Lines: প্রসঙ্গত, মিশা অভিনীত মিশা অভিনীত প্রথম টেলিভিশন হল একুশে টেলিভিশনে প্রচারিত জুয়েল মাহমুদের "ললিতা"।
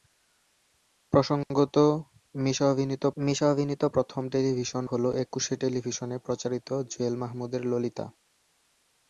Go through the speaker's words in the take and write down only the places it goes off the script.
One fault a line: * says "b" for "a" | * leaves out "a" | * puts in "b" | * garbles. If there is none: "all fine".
all fine